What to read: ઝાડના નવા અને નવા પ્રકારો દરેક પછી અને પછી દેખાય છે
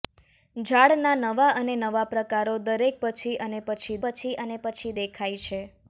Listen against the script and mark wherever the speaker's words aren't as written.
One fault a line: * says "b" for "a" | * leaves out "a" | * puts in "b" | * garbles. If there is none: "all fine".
* puts in "પછી અને પછી"